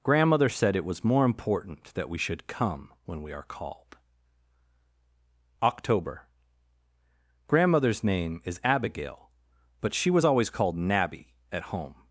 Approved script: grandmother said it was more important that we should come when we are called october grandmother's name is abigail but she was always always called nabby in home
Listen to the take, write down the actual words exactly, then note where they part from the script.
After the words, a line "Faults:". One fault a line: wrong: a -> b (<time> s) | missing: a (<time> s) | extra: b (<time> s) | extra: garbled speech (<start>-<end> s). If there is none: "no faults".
grandmother said it was more important that we should come when we are called october grandmother's name is abigail but she was always called nabby at home
Faults:
missing: always (10.5 s)
wrong: in -> at (11.5 s)